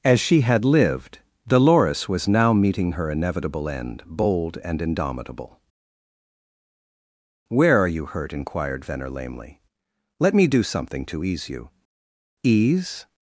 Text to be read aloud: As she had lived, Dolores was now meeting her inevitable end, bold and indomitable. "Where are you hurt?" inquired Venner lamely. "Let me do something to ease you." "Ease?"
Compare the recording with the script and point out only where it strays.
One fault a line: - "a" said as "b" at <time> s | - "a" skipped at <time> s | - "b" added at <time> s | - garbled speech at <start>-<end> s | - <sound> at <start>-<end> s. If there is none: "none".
none